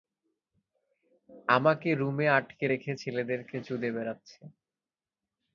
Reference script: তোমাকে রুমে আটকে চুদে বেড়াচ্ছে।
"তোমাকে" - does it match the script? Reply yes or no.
no